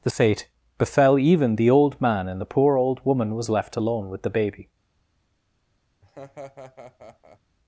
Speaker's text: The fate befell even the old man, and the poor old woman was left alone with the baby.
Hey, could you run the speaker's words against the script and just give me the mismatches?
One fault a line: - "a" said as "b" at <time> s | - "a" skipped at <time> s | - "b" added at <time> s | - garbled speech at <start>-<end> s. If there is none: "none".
none